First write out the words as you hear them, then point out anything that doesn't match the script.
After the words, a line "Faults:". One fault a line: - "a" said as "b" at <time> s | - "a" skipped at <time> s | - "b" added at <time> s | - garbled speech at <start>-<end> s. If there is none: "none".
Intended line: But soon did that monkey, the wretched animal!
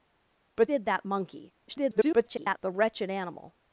But did that monkey, [garbled] the wretched animal!
Faults:
- "soon" skipped at 0.7 s
- garbled speech at 1.7-2.6 s